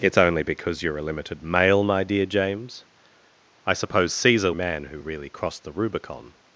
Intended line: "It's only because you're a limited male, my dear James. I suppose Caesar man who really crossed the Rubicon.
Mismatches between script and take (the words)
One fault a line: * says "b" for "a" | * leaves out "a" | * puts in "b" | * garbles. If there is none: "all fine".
all fine